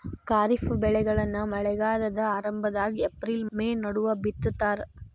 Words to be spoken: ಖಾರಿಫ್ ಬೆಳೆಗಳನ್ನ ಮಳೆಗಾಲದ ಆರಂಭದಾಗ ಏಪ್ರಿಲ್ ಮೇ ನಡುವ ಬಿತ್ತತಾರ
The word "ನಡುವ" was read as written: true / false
true